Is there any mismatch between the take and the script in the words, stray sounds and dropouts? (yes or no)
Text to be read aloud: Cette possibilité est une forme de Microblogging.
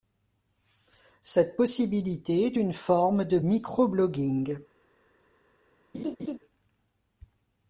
yes